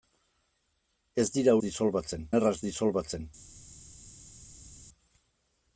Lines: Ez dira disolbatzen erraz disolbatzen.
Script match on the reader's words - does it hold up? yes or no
yes